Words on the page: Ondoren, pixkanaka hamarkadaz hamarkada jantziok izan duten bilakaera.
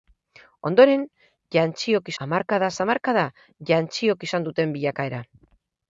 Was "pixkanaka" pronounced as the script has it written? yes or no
no